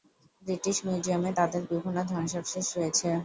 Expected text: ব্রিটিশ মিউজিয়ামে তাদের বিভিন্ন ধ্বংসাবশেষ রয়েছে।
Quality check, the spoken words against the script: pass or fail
pass